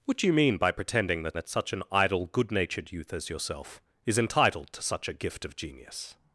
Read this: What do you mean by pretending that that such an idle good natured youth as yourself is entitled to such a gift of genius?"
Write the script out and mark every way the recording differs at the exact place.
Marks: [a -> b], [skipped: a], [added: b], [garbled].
What do you mean by pretending that that such an idle good natured youth as yourself is entitled to such a gift of genius?"